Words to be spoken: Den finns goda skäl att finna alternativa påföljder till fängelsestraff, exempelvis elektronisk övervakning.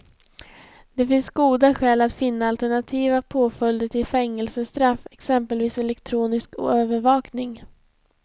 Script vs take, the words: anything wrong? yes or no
yes